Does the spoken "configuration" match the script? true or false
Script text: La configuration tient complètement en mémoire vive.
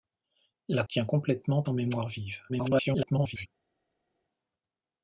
false